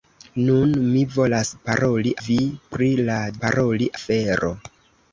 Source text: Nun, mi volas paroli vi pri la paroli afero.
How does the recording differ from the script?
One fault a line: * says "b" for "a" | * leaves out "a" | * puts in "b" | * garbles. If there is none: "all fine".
all fine